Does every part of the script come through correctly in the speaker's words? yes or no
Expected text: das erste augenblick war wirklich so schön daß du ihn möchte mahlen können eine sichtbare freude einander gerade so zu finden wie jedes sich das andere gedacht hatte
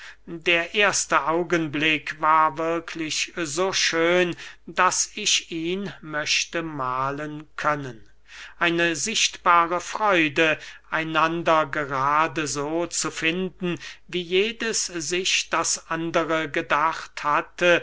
no